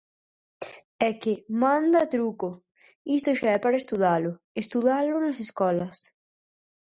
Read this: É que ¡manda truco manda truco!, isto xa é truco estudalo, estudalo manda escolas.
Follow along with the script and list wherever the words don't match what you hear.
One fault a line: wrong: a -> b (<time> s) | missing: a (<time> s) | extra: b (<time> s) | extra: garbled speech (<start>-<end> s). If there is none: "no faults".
missing: manda truco (2.5 s)
wrong: truco -> para (3.6 s)
wrong: manda -> nas (5.2 s)